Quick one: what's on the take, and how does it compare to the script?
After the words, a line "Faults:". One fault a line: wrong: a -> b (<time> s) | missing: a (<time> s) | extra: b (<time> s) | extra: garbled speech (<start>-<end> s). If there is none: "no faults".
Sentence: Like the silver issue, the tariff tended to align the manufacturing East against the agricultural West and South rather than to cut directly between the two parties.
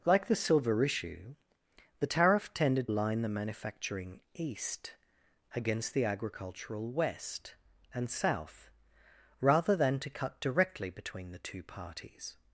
Like the silver issue, the tariff tended align the manufacturing East against the agricultural West and South rather than to cut directly between the two parties.
Faults:
missing: to (2.9 s)